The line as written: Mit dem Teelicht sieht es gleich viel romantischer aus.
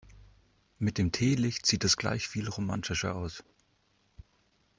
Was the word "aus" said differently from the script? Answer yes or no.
no